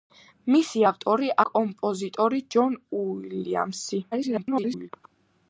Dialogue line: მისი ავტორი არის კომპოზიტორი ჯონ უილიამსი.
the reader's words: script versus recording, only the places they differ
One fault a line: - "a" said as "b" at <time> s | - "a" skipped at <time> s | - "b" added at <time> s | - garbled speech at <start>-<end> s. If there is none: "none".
- "არის" skipped at 1.3 s
- garbled speech at 4.1-4.9 s